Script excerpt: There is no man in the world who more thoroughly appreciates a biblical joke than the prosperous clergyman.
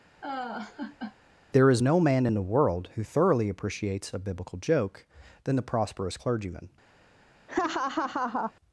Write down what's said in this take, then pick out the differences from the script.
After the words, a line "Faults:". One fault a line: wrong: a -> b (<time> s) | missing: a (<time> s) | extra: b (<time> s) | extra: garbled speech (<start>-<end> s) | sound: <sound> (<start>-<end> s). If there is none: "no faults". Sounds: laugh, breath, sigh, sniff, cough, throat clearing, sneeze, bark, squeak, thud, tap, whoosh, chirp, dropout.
There is no man in the world who thoroughly appreciates a biblical joke than the prosperous clergyman.
Faults:
sound: laugh (0.2-1.2 s)
missing: more (3.1 s)
sound: laugh (7.5-8.5 s)